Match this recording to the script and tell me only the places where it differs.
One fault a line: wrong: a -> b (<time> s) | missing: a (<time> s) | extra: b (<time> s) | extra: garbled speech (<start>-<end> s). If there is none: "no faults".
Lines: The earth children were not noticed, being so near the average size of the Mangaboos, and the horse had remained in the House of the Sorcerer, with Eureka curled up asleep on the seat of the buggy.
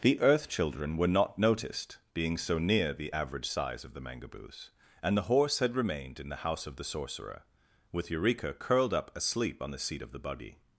no faults